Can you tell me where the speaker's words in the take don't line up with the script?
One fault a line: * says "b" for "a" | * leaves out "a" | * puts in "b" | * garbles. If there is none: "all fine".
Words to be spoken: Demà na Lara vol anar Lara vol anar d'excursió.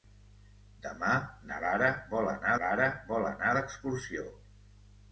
all fine